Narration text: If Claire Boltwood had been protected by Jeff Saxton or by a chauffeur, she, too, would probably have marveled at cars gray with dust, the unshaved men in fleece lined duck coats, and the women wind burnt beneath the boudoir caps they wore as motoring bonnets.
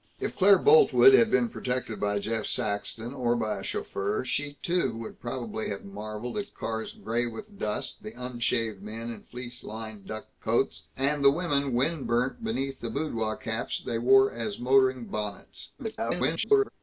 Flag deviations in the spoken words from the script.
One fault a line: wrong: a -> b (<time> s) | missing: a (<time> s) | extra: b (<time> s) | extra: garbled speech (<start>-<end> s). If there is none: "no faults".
extra: garbled speech (15.8-16.7 s)